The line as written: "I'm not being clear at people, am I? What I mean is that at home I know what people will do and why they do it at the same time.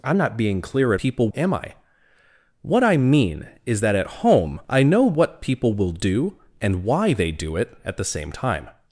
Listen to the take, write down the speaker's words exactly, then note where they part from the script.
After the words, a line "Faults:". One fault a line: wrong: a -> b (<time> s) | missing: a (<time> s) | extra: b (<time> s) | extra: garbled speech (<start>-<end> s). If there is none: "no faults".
"I'm not being clear at people, am I? What I mean is that at home I know what people will do and why they do it at the same time.
Faults:
no faults